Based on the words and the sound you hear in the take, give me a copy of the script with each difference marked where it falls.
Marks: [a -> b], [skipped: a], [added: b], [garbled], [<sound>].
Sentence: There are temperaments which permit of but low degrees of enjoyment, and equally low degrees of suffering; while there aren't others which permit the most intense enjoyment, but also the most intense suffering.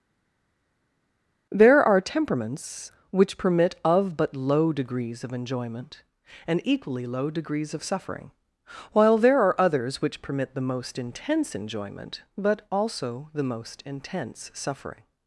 There are temperaments which permit of but low degrees of enjoyment, and equally low degrees of suffering; while there [aren't -> are] others which permit the most intense enjoyment, but also the most intense suffering.